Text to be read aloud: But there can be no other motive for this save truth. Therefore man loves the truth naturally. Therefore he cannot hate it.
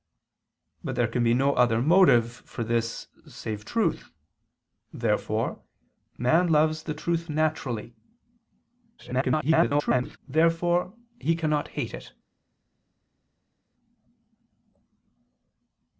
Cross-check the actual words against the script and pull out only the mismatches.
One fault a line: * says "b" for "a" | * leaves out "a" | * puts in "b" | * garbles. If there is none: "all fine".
* garbles